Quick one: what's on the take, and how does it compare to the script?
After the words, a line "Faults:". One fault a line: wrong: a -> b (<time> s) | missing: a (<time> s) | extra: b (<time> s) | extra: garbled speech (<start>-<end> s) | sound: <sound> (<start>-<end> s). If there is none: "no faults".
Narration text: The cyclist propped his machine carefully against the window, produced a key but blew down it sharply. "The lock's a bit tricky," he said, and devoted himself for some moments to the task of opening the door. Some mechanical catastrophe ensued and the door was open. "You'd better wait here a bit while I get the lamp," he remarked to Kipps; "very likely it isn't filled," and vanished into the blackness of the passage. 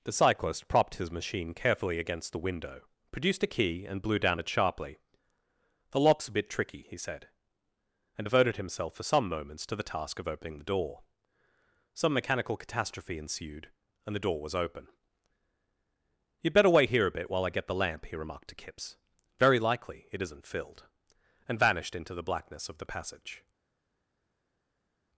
The cyclist propped his machine carefully against the window, produced a key and blew down it sharply. "The lock's a bit tricky," he said, and devoted himself for some moments to the task of opening the door. Some mechanical catastrophe ensued and the door was open. "You'd better wait here a bit while I get the lamp," he remarked to Kipps; "very likely it isn't filled," and vanished into the blackness of the passage.
Faults:
wrong: but -> and (3.9 s)